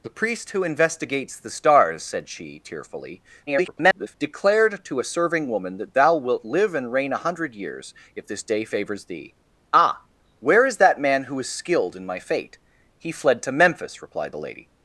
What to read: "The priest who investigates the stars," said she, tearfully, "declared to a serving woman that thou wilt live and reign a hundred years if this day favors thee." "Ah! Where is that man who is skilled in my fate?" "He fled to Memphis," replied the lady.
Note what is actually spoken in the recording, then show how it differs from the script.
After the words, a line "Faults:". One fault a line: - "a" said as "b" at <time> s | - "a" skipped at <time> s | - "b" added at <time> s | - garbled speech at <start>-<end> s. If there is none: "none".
"The priest who investigates the stars," said she, tearfully, [garbled] "declared to a serving woman that thou wilt live and reign a hundred years if this day favors thee." "Ah! Where is that man who is skilled in my fate?" "He fled to Memphis," replied the lady.
Faults:
- garbled speech at 3.5-4.1 s